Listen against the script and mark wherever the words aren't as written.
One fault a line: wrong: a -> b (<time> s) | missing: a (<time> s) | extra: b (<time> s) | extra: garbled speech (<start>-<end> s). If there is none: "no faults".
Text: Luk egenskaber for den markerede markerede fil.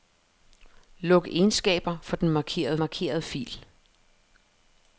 no faults